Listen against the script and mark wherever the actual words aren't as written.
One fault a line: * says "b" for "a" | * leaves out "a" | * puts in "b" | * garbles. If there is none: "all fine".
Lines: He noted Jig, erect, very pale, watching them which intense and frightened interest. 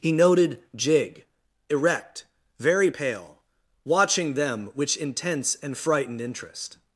all fine